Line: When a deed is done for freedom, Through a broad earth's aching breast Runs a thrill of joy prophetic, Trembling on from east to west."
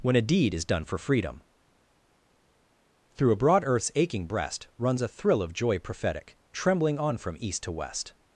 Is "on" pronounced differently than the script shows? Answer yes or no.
no